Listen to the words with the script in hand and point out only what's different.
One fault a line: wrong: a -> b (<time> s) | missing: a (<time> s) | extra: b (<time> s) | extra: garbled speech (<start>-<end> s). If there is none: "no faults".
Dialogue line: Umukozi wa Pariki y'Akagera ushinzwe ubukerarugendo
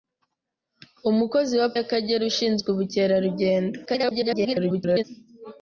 missing: Pariki (1.7 s)
extra: garbled speech (3.9-5.0 s)